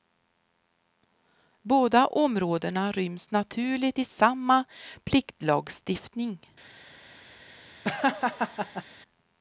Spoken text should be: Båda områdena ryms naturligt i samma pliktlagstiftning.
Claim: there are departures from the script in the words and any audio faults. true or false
true